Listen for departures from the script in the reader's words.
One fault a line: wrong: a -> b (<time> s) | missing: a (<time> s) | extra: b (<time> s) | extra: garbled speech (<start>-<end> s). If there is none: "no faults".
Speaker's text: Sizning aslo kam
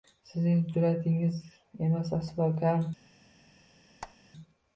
extra: jur'atingiz emas (0.7 s)